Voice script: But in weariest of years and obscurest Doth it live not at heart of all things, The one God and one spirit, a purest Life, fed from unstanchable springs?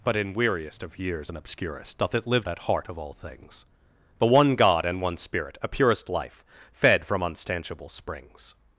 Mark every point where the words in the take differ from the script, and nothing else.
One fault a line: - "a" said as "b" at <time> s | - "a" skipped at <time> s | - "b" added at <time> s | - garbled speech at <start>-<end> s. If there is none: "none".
- "not" skipped at 2.5 s